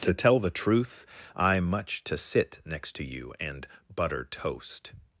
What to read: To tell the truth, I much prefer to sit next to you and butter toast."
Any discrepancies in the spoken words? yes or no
yes